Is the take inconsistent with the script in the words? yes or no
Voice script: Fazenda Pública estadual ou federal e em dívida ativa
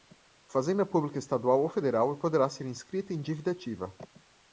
yes